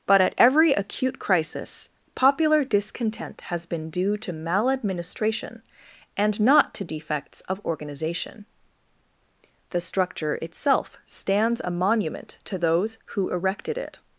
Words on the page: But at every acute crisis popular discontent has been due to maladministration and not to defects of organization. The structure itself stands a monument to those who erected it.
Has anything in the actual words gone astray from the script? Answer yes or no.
no